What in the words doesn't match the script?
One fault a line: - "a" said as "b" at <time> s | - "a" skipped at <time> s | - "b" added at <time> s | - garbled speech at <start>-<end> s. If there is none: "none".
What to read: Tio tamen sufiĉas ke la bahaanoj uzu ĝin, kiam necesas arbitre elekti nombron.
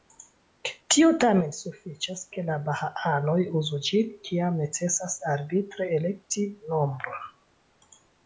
none